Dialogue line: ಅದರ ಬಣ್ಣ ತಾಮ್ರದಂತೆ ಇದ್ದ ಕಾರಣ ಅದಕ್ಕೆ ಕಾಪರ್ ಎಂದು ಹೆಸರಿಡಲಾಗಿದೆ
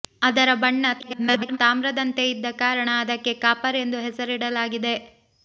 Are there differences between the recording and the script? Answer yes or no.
yes